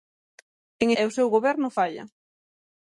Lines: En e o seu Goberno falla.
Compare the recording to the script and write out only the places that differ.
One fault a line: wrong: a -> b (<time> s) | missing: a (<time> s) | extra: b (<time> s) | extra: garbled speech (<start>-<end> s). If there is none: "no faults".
no faults